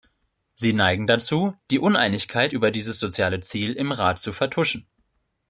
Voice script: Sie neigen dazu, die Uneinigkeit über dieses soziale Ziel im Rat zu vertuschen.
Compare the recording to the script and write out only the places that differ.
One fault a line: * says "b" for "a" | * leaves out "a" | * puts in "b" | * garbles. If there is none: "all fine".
all fine